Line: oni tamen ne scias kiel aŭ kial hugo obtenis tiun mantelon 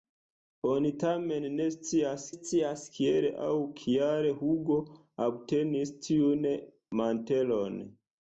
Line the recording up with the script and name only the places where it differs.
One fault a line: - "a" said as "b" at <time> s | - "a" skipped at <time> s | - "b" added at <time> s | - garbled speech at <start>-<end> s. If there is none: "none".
- "scias" added at 2.3 s